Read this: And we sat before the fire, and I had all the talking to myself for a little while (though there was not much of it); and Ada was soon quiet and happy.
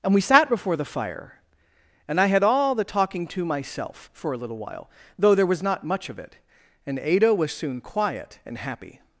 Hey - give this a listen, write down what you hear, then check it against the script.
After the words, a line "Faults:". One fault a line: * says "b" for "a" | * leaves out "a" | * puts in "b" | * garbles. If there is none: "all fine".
And we sat before the fire, and I had all the talking to myself for a little while (though there was not much of it); and Ada was soon quiet and happy.
Faults:
all fine